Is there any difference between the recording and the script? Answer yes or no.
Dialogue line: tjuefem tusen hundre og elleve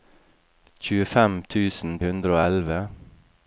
no